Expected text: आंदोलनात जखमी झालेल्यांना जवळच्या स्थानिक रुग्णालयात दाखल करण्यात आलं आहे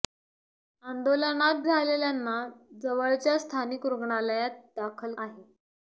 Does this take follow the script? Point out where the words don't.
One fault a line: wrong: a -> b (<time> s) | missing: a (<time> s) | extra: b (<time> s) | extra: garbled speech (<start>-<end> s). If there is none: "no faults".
missing: जखमी (1.6 s)
missing: करण्यात आलं (5.1 s)